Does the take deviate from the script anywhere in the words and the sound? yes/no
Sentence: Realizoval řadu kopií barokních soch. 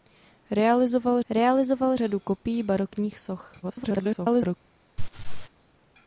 yes